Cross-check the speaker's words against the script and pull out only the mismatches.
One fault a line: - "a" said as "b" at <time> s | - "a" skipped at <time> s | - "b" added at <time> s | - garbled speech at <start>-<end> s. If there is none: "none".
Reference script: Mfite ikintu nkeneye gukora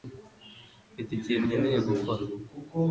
none